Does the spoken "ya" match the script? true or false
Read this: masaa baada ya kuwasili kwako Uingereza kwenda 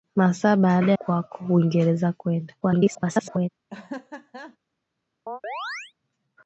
false